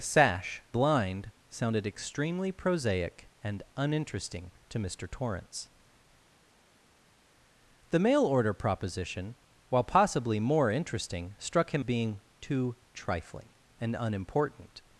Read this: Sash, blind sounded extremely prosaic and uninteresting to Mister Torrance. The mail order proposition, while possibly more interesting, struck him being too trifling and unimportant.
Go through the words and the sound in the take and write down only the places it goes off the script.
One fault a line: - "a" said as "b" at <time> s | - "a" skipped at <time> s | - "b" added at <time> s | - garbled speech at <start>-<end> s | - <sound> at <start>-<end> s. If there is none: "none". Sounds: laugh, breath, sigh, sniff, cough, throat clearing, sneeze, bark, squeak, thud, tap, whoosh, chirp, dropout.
none